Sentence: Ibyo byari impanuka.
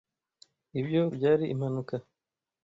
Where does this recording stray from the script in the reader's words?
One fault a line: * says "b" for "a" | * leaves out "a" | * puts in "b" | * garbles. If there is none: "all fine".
all fine